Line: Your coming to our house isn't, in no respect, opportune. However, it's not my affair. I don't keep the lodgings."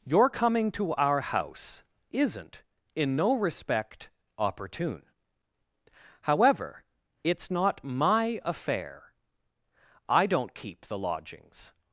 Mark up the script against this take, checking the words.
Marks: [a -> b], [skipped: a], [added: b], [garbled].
Your coming to our house isn't, in no respect, opportune. However, it's not my affair. I don't keep the lodgings."